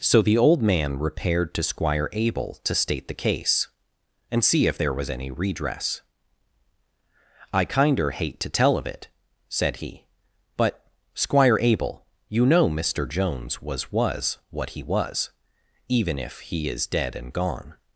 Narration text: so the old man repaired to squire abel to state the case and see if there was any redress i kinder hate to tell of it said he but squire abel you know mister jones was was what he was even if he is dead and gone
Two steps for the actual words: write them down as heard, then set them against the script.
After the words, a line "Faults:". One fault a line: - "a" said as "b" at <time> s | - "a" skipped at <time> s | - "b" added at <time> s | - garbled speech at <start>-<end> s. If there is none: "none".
so the old man repaired to squire abel to state the case and see if there was any redress i kinder hate to tell of it said he but squire abel you know mister jones was was what he was even if he is dead and gone
Faults:
none